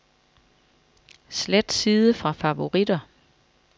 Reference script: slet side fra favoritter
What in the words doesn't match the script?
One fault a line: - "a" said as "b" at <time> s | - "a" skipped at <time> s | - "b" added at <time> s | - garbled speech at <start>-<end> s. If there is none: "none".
none